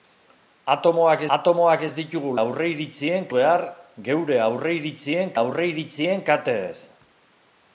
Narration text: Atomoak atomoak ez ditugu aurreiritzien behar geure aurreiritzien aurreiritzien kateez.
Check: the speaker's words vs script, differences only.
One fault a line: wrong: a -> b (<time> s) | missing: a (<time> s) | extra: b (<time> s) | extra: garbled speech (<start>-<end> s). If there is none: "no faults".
no faults